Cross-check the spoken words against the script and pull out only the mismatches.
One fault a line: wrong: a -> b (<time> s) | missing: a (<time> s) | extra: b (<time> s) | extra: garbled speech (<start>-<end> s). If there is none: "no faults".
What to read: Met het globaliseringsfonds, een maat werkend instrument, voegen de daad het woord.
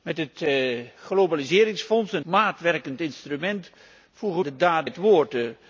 no faults